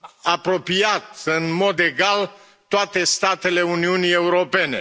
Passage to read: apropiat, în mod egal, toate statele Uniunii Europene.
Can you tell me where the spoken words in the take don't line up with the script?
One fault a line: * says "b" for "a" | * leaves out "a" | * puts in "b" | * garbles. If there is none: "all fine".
all fine